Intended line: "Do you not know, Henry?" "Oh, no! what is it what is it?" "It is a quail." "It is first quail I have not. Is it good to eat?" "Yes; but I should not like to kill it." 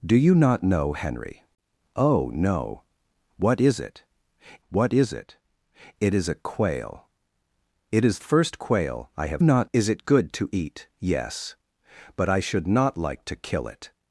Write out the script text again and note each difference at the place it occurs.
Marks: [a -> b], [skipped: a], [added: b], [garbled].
"Do you not know, Henry?" "Oh, no! what is it what is it?" "It is a quail." "It is first quail I have not. Is it good to eat?" "Yes; but I should not like to kill it."